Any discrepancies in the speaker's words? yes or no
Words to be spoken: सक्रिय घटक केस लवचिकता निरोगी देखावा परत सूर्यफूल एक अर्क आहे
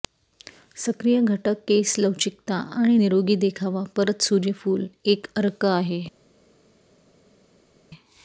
yes